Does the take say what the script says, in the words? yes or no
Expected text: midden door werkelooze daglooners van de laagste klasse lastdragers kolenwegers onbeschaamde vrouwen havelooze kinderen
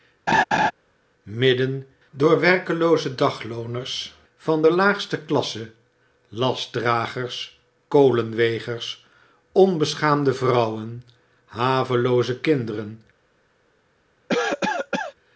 yes